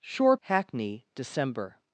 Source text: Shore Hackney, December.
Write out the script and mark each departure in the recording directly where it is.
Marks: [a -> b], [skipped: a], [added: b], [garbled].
Shore Hackney, December.